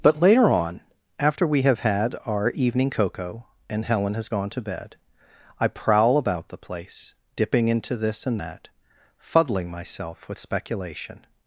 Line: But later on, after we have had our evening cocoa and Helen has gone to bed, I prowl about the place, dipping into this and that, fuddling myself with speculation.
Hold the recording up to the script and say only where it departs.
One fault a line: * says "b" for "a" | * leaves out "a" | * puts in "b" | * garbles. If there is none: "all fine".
all fine